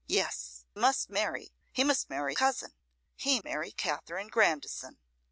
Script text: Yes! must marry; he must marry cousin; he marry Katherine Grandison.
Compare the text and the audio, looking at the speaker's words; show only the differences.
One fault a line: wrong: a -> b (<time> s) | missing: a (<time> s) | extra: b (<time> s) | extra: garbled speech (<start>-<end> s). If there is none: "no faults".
no faults